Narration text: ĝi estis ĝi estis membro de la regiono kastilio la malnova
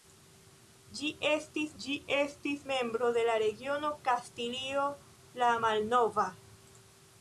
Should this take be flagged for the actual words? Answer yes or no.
no